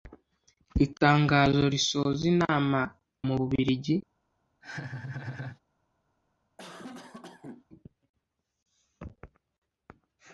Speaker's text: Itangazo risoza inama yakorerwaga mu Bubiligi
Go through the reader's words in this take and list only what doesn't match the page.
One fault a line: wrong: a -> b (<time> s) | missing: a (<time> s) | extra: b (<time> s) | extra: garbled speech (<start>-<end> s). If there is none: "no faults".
missing: yakorerwaga (2.8 s)